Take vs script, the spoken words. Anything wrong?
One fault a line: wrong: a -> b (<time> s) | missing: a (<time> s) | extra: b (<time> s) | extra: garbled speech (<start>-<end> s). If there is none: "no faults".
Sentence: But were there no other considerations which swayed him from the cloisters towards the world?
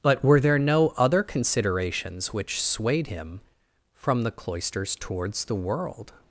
no faults